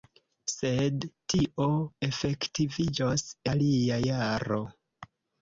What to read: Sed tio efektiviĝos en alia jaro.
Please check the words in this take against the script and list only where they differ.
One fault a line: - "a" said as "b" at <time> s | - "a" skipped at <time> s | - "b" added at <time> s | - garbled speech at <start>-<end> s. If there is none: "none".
- "en" skipped at 3.3 s